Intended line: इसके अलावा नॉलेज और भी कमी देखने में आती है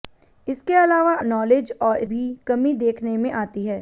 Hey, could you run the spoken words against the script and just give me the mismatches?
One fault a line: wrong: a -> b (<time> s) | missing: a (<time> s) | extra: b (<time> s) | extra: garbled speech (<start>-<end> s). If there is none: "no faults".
no faults